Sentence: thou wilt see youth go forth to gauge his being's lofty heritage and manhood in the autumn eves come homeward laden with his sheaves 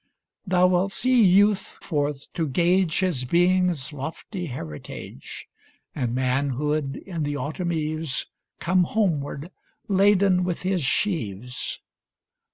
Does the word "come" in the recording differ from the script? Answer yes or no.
no